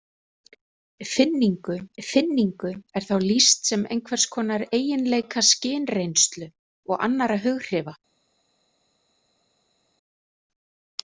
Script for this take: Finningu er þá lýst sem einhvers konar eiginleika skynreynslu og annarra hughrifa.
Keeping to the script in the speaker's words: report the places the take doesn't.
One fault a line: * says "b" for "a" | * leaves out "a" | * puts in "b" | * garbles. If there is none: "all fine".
* puts in "finningu"